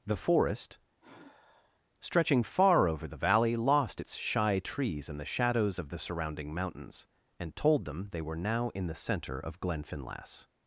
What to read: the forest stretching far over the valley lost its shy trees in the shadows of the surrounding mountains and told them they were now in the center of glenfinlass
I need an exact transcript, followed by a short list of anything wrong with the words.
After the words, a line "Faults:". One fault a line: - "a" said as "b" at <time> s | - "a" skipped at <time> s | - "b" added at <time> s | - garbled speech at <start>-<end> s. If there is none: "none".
the forest stretching far over the valley lost its shy trees in the shadows of the surrounding mountains and told them they were now in the center of glenfinlass
Faults:
none